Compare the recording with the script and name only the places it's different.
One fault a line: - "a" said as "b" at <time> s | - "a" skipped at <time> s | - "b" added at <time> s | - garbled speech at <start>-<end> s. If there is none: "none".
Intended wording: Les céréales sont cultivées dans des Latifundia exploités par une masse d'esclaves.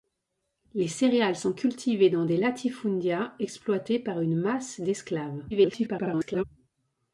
- garbled speech at 5.5-6.4 s